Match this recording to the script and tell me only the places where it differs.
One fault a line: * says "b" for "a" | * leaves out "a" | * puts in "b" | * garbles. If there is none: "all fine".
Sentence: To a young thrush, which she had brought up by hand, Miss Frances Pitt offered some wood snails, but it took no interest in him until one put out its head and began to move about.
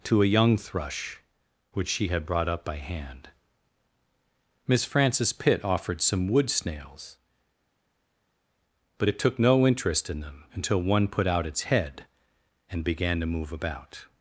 * says "them" for "him"